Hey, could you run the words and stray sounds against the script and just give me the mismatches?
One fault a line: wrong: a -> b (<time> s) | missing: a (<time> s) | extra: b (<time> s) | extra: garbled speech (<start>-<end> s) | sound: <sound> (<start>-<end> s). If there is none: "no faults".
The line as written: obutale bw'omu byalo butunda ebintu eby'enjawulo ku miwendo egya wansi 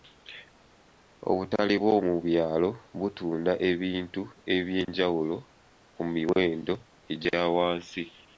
no faults